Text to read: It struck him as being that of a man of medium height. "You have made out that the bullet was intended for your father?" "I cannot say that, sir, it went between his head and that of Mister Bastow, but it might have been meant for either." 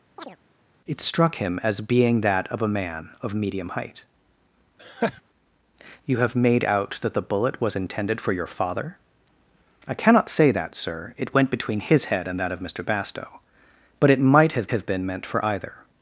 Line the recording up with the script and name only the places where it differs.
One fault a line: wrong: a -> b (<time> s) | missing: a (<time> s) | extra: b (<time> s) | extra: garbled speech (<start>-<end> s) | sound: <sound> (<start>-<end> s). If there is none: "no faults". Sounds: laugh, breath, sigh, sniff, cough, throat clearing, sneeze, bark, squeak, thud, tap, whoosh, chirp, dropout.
sound: chirp (0.2-0.4 s)
sound: laugh (4.8-5.2 s)
extra: have (14.7 s)